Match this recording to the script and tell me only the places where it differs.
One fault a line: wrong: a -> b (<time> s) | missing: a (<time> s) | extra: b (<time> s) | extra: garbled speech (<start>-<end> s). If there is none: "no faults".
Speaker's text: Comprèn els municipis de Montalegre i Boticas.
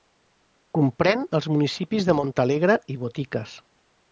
no faults